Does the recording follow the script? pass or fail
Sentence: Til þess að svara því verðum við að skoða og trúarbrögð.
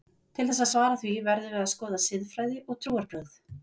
fail